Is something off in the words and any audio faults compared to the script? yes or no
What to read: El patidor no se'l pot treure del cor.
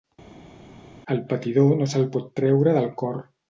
no